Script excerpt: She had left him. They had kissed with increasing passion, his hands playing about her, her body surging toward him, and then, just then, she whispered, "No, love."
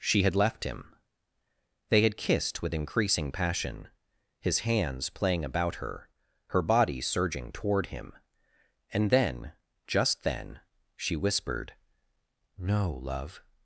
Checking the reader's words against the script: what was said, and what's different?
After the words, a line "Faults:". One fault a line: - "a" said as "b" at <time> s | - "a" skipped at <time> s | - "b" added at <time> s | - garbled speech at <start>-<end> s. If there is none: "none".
She had left him. They had kissed with increasing passion, his hands playing about her, her body surging toward him, and then, just then, she whispered, "No, love."
Faults:
none